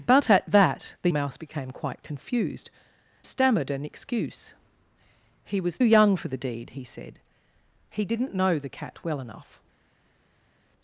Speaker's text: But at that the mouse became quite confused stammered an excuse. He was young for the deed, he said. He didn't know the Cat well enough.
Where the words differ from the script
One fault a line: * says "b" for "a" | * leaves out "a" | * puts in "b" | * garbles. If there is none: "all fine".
all fine